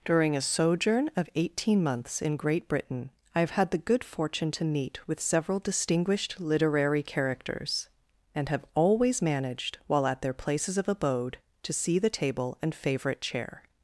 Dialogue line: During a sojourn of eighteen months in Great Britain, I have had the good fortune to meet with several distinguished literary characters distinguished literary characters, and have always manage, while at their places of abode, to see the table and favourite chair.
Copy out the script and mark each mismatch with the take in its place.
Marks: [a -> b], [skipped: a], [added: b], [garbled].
During a sojourn of eighteen months in Great Britain, I have had the good fortune to meet with several distinguished literary characters [skipped: distinguished literary characters,] and have always [manage, -> managed] while at their places of abode, to see the table and favourite chair.